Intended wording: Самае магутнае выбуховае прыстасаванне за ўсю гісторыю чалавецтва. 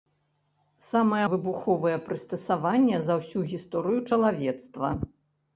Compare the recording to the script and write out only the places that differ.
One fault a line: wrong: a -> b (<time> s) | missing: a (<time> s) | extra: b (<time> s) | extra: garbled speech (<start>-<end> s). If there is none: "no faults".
missing: магутнае (1.2 s)